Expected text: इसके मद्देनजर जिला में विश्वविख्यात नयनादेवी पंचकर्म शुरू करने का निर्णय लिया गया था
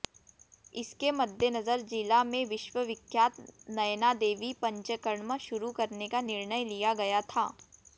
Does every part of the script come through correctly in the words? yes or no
yes